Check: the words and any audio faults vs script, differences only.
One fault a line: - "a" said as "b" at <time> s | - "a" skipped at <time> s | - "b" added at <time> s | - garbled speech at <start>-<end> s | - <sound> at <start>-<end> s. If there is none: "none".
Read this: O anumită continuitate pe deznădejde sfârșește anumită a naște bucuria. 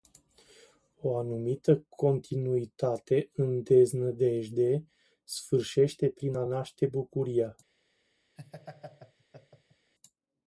- "pe" said as "în" at 3.3 s
- "anumită" said as "prin" at 6.1 s
- laugh at 8.4-9.9 s